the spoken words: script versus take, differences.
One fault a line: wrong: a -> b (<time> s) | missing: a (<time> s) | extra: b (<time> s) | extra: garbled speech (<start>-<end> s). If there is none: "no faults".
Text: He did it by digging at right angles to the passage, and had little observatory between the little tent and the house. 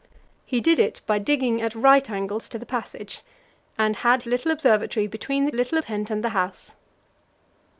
no faults